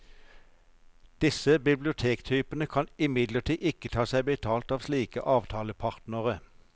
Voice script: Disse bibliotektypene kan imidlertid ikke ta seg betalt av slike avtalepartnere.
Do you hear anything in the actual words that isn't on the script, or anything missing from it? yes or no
no